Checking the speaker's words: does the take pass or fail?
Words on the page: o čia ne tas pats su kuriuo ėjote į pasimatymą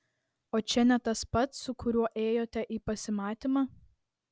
pass